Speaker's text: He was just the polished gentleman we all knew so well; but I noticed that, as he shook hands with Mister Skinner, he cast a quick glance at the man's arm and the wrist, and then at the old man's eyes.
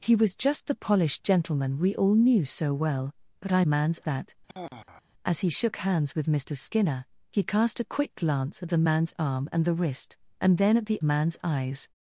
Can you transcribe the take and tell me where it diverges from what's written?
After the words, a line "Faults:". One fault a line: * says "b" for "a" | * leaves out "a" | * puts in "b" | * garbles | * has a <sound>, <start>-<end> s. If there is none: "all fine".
He was just the polished gentleman we all knew so well; but I man's that, as he shook hands with Mister Skinner, he cast a quick glance at the man's arm and the wrist, and then at the man's eyes.
Faults:
* says "man's" for "noticed"
* has a sigh, 4.5-5.0 s
* leaves out "old"